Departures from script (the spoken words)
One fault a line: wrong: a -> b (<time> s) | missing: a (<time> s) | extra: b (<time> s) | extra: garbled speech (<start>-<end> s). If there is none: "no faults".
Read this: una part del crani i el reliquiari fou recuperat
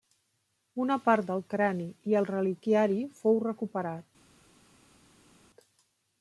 no faults